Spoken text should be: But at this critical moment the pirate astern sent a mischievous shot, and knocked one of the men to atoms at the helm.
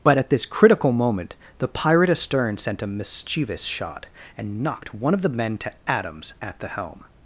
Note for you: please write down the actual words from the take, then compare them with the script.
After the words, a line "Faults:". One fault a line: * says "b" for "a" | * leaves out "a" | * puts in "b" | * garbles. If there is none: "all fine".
But at this critical moment the pirate astern sent a mischievous shot, and knocked one of the men to atoms at the helm.
Faults:
all fine